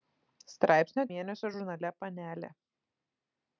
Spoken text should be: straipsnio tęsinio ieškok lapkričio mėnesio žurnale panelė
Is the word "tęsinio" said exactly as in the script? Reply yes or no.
no